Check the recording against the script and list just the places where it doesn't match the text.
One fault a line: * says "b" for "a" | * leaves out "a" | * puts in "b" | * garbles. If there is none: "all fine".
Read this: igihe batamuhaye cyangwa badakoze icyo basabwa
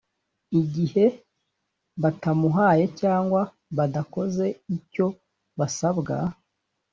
all fine